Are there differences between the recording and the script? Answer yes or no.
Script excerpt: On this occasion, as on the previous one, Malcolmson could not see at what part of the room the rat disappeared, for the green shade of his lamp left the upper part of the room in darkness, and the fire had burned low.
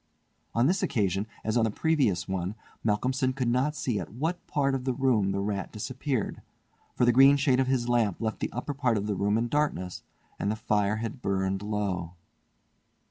no